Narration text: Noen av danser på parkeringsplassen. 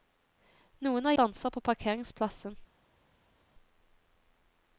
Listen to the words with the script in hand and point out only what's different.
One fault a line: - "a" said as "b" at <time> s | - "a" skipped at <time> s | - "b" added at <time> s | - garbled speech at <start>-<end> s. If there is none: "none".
none